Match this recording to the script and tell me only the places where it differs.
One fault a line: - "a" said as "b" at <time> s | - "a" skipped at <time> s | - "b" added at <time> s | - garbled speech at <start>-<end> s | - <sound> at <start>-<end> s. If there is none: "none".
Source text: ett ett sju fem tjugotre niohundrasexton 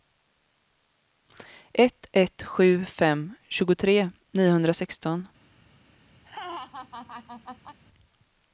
- laugh at 6.2-7.8 s